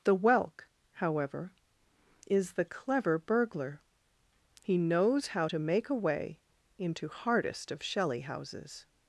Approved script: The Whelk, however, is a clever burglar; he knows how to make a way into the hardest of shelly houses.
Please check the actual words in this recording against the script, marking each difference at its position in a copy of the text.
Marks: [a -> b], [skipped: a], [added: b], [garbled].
The Whelk, however, is [a -> the] clever burglar; he knows how to make a way into [skipped: the] hardest of shelly houses.